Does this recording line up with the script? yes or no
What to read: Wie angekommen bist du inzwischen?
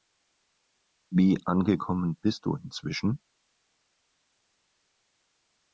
yes